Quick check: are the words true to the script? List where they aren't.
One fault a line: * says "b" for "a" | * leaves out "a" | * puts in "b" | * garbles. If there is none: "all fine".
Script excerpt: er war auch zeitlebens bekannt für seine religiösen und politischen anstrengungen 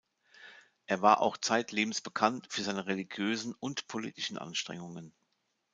all fine